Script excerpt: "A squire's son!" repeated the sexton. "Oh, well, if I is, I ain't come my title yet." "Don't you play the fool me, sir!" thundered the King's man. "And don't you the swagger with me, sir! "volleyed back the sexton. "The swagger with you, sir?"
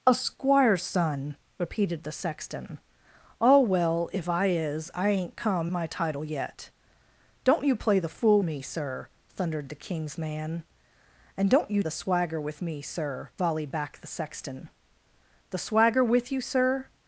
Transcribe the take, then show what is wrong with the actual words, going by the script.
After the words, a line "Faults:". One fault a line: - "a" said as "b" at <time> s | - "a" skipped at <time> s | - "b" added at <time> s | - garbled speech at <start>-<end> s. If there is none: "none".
"A squire's son!" repeated the sexton. "Oh, well, if I is, I ain't come my title yet." "Don't you play the fool me, sir!" thundered the King's man. "And don't you the swagger with me, sir! "volleyed back the sexton. "The swagger with you, sir?"
Faults:
none